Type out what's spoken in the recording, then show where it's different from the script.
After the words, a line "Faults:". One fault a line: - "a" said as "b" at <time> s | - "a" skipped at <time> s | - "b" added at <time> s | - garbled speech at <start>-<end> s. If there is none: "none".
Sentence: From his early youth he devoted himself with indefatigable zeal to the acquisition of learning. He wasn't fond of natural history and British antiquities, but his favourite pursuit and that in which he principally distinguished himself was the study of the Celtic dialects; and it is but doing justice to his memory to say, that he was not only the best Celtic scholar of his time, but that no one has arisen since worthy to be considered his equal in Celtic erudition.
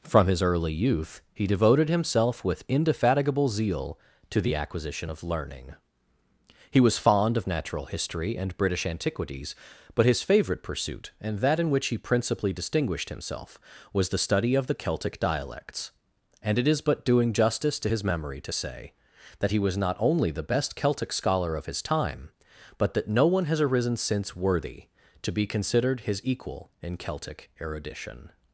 From his early youth he devoted himself with indefatigable zeal to the acquisition of learning. He was fond of natural history and British antiquities, but his favourite pursuit and that in which he principally distinguished himself was the study of the Celtic dialects; and it is but doing justice to his memory to say, that he was not only the best Celtic scholar of his time, but that no one has arisen since worthy to be considered his equal in Celtic erudition.
Faults:
- "wasn't" said as "was" at 6.8 s